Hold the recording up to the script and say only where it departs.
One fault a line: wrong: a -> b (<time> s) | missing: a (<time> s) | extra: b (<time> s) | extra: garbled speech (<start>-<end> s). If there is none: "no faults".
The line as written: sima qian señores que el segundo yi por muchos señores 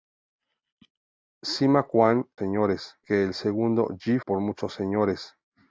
no faults